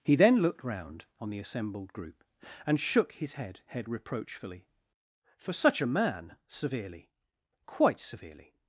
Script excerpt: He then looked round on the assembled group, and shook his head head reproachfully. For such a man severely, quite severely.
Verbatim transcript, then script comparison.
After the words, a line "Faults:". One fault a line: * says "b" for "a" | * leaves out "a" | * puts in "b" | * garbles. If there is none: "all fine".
He then looked round on the assembled group, and shook his head head reproachfully. For such a man severely, quite severely.
Faults:
all fine